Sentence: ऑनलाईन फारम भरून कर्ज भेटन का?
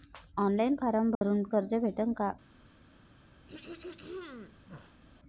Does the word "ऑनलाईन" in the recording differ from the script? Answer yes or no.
no